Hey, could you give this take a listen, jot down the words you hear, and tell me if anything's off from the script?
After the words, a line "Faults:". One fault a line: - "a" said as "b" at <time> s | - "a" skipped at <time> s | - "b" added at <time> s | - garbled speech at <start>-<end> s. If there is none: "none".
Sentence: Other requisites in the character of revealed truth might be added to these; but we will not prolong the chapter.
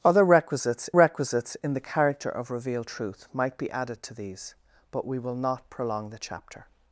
Other requisites requisites in the character of revealed truth might be added to these; but we will not prolong the chapter.
Faults:
- "requisites" added at 0.9 s